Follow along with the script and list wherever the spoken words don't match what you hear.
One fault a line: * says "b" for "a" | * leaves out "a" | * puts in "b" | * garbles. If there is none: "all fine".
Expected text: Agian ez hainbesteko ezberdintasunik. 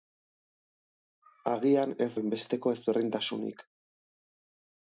all fine